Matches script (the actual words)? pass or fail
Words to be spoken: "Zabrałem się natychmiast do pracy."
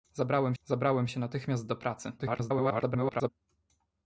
fail